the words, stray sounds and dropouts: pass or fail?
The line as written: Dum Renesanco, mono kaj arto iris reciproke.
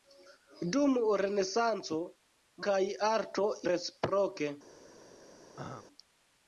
fail